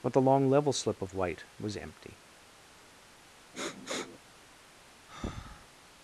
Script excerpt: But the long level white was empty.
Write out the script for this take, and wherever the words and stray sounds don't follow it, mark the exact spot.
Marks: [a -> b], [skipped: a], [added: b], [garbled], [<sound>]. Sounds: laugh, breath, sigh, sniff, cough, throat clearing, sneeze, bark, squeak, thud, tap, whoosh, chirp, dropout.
But the long level [added: slip of] white was empty. [sniff] [breath]